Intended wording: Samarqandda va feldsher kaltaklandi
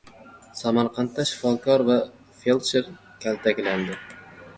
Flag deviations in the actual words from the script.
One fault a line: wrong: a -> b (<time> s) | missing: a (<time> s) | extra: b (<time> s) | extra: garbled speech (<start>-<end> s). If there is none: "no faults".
extra: shifokor (1.3 s)